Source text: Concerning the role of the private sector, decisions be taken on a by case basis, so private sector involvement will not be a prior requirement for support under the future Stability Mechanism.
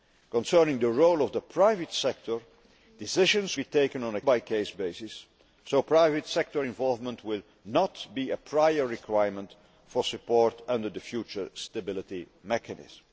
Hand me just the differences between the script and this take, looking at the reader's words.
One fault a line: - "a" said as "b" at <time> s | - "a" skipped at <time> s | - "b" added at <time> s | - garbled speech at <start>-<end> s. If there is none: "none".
none